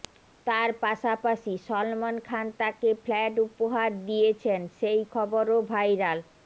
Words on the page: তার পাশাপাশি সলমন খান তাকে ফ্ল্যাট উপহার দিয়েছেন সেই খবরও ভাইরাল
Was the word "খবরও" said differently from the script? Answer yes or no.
no